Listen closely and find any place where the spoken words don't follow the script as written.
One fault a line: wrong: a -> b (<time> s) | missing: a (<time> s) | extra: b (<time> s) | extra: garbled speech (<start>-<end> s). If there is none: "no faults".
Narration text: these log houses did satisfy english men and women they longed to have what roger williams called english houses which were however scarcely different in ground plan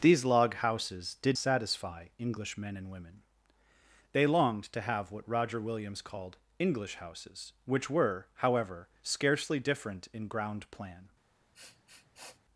no faults